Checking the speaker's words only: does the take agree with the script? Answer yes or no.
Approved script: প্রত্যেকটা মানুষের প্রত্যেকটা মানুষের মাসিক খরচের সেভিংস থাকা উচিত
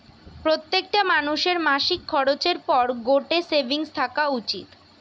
no